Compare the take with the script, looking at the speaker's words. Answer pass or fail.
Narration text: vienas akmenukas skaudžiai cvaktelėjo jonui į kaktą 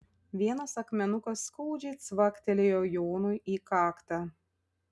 pass